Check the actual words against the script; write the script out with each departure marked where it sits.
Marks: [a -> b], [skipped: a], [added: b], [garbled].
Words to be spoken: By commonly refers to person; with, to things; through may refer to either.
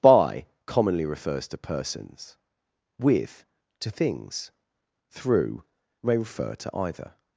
By commonly refers to [person; -> persons] with, to things; through may refer to either.